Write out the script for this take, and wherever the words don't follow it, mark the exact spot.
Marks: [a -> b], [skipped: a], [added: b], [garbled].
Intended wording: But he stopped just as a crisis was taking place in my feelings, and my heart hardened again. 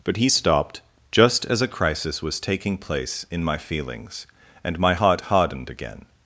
But he stopped just as a crisis was taking place in my feelings, and my heart hardened again.